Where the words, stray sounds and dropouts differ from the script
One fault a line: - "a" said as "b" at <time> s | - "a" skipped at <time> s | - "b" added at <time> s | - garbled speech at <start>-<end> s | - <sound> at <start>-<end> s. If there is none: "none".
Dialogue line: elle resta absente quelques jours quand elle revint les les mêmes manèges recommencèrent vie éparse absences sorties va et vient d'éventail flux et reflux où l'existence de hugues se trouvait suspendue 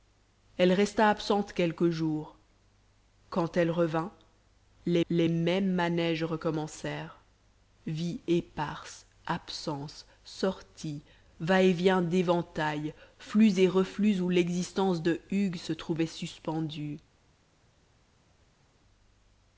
none